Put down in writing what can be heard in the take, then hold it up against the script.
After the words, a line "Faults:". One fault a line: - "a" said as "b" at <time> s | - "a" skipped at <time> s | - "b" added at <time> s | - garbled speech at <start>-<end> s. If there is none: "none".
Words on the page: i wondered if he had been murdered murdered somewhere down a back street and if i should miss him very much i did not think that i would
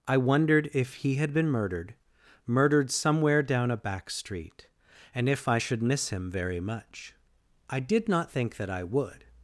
i wondered if he had been murdered murdered somewhere down a back street and if i should miss him very much i did not think that i would
Faults:
none